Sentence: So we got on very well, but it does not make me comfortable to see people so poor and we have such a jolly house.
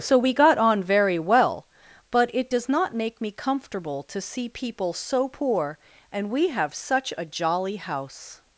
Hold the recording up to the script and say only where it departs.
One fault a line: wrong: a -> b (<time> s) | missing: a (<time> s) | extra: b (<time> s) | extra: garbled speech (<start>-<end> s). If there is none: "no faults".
no faults